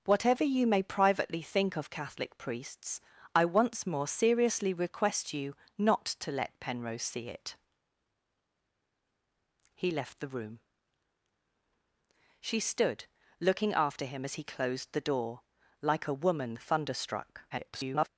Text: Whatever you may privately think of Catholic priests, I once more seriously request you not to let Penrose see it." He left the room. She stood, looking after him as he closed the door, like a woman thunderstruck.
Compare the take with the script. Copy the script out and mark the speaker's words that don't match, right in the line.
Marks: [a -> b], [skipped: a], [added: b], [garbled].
Whatever you may privately think of Catholic priests, I once more seriously request you not to let Penrose see it." He left the room. She stood, looking after him as he closed the door, like a woman thunderstruck. [garbled]